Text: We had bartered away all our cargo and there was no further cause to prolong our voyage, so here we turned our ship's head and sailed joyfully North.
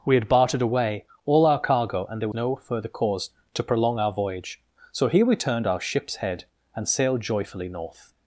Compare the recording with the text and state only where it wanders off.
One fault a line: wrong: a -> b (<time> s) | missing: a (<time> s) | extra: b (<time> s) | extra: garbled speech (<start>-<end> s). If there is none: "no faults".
missing: was (2.3 s)